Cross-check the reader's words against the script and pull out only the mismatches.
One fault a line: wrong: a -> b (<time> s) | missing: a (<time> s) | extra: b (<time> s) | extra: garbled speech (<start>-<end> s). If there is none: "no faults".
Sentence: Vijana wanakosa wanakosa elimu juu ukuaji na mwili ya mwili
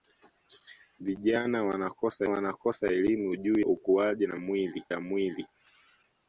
no faults